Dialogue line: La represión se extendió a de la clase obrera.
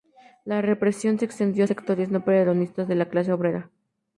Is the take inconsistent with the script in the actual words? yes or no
yes